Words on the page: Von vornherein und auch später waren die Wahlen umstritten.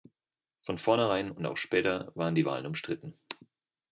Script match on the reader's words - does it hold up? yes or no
yes